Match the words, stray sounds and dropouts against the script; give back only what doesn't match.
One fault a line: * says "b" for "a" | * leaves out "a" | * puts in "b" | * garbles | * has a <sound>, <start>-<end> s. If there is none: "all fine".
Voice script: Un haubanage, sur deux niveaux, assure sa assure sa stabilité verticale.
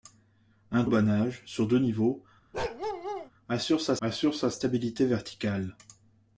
* has a bark, 2.5-3.3 s